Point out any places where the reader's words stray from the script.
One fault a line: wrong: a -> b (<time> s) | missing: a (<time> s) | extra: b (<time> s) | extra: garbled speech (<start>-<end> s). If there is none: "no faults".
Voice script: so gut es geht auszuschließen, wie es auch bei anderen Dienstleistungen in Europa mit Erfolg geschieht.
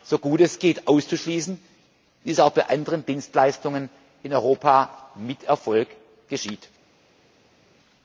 no faults